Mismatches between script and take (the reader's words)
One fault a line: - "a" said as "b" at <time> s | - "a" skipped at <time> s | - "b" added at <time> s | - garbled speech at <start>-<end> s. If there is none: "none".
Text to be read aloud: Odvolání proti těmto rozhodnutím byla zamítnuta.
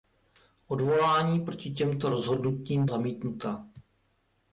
- "byla" skipped at 2.9 s